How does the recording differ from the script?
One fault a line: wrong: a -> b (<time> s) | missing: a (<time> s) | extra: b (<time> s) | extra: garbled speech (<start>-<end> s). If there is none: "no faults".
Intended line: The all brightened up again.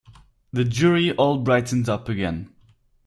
extra: jury (0.7 s)